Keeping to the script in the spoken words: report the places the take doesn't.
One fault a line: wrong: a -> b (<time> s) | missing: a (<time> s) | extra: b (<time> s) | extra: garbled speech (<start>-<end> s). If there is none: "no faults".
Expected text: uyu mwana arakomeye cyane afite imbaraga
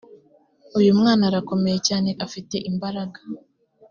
no faults